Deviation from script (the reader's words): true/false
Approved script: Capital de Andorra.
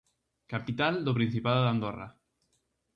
true